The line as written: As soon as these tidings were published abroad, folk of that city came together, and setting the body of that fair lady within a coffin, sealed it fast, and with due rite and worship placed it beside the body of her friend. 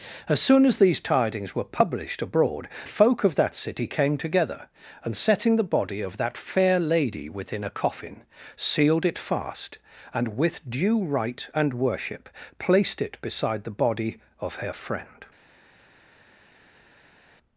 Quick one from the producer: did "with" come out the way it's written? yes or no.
yes